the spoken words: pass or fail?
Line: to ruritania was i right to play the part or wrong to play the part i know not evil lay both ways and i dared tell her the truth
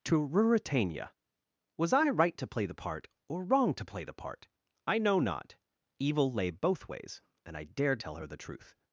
pass